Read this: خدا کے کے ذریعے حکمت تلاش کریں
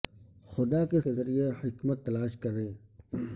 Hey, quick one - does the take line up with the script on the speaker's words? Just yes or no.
yes